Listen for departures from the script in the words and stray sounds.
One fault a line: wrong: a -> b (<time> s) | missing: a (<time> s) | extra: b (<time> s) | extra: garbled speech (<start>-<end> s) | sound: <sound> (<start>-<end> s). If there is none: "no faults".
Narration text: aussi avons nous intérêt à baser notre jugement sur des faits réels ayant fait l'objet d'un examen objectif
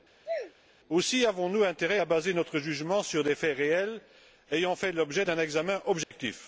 sound: sneeze (0.2-0.5 s)
sound: dropout (6.0-6.1 s)